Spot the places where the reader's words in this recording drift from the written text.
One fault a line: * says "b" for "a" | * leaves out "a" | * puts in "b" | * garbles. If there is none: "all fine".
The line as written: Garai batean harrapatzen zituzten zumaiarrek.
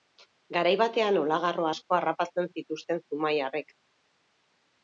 * puts in "olagarro asko"